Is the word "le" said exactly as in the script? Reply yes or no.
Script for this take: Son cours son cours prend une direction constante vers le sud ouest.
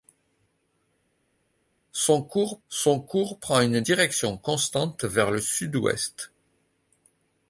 yes